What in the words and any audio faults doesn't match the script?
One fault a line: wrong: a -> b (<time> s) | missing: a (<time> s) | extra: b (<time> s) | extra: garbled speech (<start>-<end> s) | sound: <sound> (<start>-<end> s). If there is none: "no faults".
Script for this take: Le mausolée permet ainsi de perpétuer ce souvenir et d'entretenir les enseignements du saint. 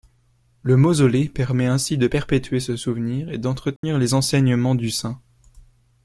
sound: dropout (3.8-3.8 s)